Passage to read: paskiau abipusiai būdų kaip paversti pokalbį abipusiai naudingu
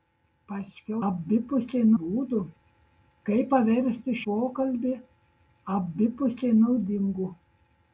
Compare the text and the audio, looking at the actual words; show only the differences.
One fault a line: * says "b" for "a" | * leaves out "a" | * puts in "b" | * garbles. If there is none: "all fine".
all fine